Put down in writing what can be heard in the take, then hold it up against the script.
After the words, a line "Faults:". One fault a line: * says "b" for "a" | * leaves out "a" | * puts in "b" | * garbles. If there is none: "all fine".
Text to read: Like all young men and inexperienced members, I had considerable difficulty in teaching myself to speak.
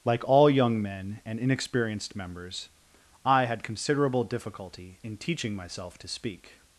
Like all young men and inexperienced members, I had considerable difficulty in teaching myself to speak.
Faults:
all fine